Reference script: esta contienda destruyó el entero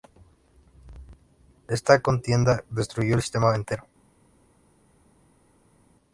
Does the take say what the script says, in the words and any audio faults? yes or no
no